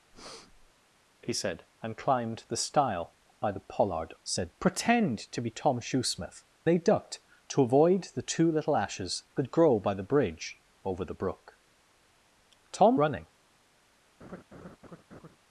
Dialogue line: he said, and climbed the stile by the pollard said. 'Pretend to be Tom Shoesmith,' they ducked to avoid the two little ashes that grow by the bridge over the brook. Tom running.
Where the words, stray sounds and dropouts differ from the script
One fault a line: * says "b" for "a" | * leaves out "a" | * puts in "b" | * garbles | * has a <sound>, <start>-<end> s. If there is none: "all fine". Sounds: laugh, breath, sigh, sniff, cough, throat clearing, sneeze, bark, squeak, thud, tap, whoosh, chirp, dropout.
* has a breath, 0.1-0.7 s
* has a laugh, 14.2-15.4 s